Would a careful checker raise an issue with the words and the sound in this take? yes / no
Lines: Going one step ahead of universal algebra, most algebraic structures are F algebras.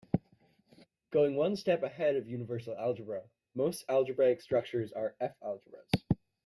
no